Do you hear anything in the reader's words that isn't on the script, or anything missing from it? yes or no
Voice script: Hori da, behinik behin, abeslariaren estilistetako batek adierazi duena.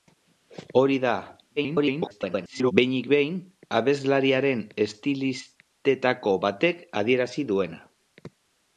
yes